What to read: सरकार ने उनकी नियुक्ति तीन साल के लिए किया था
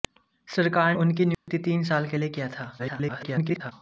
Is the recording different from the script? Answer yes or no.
yes